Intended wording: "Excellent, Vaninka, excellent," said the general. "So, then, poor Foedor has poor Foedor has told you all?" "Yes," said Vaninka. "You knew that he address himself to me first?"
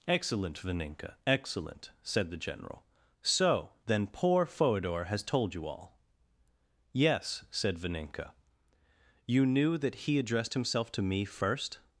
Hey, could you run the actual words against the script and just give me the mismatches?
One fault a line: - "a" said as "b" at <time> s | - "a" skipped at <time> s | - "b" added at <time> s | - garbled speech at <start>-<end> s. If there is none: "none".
- "poor Foedor has" skipped at 5.2 s
- "address" said as "addressed" at 10.2 s